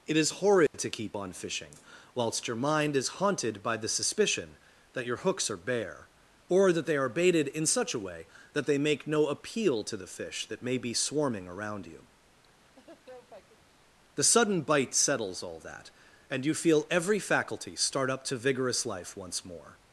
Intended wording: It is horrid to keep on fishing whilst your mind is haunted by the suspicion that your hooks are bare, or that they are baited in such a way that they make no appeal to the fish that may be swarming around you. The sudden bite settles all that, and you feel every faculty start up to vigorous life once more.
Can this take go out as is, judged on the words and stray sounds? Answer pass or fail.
fail